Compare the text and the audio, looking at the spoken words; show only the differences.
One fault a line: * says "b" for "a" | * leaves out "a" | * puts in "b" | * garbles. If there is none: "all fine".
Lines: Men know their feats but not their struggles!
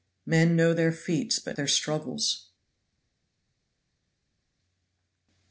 * leaves out "not"